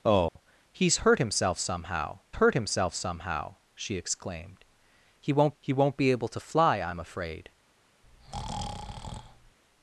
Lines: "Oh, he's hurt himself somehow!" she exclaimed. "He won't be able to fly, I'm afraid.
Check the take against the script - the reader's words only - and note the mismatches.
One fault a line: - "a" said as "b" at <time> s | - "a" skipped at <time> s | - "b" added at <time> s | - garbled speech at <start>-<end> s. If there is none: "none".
- "hurt himself somehow" added at 2.3 s
- "he won't" added at 5.6 s